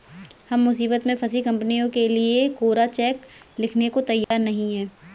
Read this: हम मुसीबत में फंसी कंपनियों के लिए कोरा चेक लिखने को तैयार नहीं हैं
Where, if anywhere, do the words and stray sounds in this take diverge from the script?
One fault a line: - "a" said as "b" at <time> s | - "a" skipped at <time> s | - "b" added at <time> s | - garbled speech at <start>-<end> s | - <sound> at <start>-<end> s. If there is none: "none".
- dropout at 4.2-4.3 s